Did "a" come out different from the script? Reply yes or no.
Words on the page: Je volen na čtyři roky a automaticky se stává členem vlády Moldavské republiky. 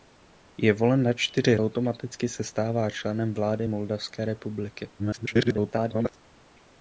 yes